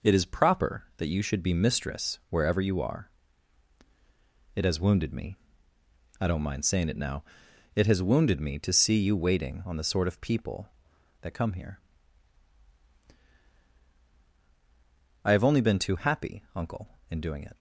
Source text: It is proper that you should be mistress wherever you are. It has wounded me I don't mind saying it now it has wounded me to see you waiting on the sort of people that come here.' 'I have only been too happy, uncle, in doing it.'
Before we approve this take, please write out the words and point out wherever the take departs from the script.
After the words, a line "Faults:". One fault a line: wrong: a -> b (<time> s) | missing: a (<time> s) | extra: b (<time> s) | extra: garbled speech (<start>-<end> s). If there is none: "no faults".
It is proper that you should be mistress wherever you are. It has wounded me I don't mind saying it now it has wounded me to see you waiting on the sort of people that come here.' 'I have only been too happy, uncle, in doing it.'
Faults:
no faults